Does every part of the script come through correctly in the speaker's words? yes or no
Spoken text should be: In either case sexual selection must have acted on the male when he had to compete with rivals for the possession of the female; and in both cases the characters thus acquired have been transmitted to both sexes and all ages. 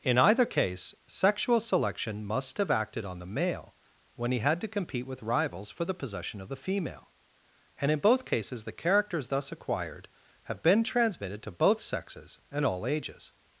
yes